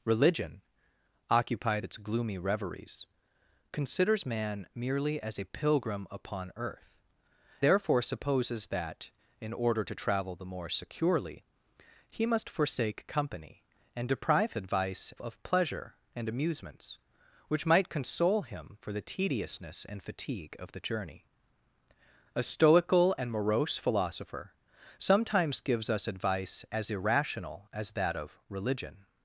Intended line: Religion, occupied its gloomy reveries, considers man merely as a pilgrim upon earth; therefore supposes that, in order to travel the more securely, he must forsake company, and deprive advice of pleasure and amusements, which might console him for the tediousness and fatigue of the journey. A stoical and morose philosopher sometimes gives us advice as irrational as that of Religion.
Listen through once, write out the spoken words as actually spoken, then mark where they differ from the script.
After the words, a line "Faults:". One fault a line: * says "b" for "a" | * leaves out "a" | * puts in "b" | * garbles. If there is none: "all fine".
Religion, occupied its gloomy reveries, considers man merely as a pilgrim upon earth; therefore supposes that, in order to travel the more securely, he must forsake company, and deprive advice of pleasure and amusements, which might console him for the tediousness and fatigue of the journey. A stoical and morose philosopher sometimes gives us advice as irrational as that of Religion.
Faults:
all fine